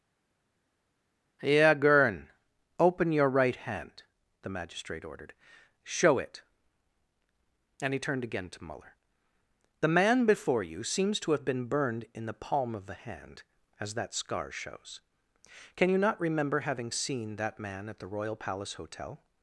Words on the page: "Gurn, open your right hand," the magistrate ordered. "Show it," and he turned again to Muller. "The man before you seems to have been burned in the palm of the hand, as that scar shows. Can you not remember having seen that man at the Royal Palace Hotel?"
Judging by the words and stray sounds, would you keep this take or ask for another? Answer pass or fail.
fail